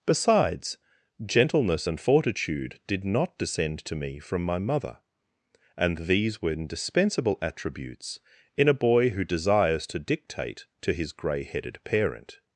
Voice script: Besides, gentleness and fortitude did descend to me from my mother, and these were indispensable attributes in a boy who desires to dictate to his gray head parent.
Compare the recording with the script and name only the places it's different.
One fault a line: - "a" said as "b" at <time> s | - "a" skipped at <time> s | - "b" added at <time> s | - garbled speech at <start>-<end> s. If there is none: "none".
- "not" added at 3.0 s
- "head" said as "headed" at 11.4 s